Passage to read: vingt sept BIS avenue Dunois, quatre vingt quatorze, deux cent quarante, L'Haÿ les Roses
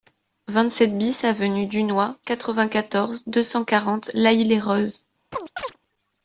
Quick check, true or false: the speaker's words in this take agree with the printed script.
true